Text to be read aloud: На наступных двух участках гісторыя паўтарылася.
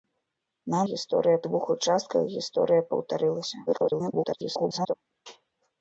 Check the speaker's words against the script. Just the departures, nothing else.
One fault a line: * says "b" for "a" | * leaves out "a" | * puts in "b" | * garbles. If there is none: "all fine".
* says "гісторыя" for "наступных"
* garbles